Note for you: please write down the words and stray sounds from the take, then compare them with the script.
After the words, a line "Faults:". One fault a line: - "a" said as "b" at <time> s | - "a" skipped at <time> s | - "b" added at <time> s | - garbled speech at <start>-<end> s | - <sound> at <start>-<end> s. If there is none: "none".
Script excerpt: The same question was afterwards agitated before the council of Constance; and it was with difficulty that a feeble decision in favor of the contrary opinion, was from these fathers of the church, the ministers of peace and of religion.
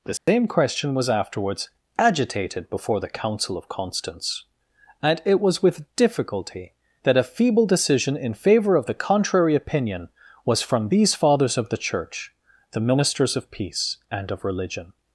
The same question was afterwards agitated before the council of Constance; and it was with difficulty that a feeble decision in favor of the contrary opinion, was from these fathers of the church, the ministers of peace and of religion.
Faults:
- dropout at 0.2-0.3 s